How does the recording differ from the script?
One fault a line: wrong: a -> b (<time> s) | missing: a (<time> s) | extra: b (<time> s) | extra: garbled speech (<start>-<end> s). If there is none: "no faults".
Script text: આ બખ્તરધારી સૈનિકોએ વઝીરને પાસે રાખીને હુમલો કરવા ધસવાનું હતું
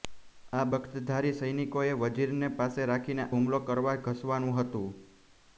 no faults